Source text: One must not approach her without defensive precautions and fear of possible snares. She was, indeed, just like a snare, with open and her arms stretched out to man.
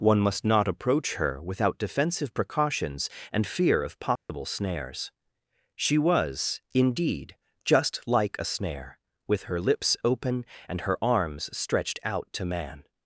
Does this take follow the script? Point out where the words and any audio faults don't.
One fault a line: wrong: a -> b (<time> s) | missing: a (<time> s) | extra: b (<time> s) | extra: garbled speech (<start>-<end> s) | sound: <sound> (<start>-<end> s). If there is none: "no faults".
sound: dropout (4.2-4.3 s)
extra: her lips (9.4 s)